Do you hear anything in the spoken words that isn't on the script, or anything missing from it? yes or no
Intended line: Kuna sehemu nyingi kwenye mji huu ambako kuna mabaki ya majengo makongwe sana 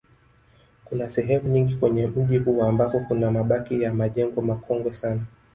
no